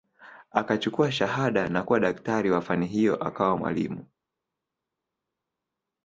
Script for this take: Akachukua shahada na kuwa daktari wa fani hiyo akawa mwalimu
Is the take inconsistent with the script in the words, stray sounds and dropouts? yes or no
no